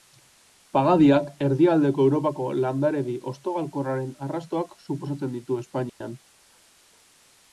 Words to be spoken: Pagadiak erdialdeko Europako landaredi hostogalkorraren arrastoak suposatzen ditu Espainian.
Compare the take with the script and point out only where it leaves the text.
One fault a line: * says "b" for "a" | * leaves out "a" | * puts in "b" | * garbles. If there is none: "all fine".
all fine